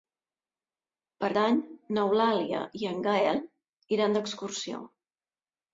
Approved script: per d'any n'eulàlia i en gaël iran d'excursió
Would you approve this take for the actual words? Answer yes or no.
yes